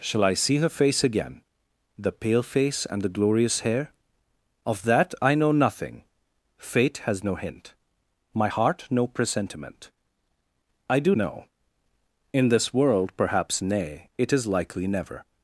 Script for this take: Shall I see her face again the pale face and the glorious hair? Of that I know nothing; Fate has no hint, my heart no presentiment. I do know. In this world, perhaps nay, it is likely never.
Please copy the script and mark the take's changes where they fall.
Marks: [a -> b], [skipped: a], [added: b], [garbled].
Shall I see her face again the pale face and the glorious hair? Of that I know nothing; Fate has no hint, my heart no presentiment. I do know. In this world, perhaps nay, it is likely never.